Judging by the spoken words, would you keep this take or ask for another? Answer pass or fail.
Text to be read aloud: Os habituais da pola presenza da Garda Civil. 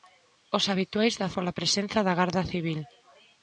pass